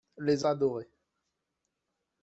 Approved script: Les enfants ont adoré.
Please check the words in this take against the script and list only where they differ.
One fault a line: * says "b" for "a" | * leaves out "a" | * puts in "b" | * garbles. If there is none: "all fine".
* leaves out "enfants ont"